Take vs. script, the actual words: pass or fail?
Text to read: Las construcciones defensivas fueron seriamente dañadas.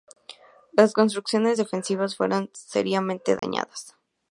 pass